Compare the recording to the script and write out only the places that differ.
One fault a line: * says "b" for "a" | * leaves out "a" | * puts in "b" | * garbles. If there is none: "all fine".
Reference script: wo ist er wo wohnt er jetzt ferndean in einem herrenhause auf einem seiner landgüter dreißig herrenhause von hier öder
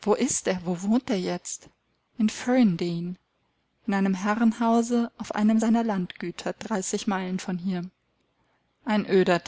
* puts in "in"
* says "meilen" for "herrenhause"
* puts in "ein"